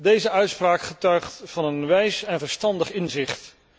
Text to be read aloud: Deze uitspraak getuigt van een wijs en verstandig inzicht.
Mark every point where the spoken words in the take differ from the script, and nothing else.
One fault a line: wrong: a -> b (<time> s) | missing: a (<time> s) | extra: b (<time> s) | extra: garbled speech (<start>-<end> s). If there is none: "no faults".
no faults